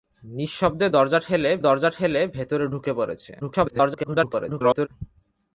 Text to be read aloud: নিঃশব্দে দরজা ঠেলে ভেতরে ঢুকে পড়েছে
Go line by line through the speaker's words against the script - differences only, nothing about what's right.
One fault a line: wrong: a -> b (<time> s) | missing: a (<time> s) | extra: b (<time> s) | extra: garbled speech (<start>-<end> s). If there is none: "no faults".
extra: দরজা ঠেলে (1.6 s)
extra: garbled speech (3.4-4.9 s)